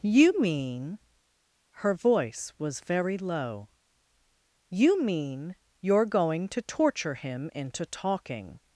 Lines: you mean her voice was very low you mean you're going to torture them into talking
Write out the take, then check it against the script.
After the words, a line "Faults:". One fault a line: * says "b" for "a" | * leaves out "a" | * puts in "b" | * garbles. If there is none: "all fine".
you mean her voice was very low you mean you're going to torture him into talking
Faults:
* says "him" for "them"